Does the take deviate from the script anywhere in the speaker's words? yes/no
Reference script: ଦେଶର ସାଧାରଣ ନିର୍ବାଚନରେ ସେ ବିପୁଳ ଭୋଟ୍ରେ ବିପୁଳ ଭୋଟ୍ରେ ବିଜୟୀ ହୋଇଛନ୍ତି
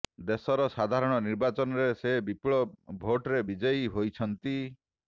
yes